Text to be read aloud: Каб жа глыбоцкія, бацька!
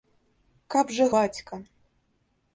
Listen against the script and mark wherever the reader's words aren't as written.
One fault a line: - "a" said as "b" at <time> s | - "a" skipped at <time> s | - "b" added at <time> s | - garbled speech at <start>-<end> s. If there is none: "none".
- "глыбоцкія" skipped at 1.1 s